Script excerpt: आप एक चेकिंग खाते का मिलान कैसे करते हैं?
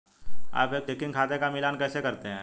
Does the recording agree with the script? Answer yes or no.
yes